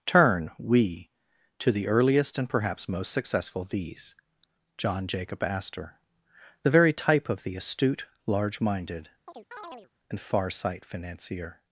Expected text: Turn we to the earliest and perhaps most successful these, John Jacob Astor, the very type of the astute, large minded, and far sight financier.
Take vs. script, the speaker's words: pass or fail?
pass